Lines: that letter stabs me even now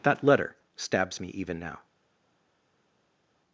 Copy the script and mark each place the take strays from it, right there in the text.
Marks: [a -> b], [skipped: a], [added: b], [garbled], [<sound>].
that letter stabs me even now